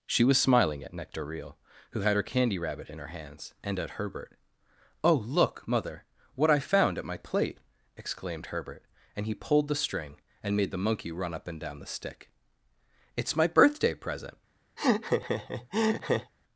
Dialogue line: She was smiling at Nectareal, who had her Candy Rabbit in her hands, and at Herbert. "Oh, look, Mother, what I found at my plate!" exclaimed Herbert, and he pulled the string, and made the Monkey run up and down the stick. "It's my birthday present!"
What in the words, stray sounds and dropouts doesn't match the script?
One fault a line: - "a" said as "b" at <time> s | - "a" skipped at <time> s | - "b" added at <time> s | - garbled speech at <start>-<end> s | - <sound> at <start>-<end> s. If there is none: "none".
- laugh at 14.8-16.3 s